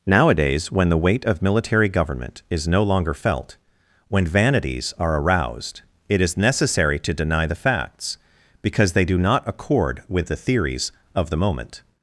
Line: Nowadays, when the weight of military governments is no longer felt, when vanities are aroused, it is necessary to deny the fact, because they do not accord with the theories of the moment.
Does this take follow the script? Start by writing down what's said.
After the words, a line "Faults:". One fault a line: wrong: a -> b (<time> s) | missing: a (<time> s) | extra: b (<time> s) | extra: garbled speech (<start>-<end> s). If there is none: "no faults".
Nowadays, when the weight of military government is no longer felt, when vanities are aroused, it is necessary to deny the facts, because they do not accord with the theories of the moment.
Faults:
wrong: governments -> government (1.9 s)
wrong: fact -> facts (7.5 s)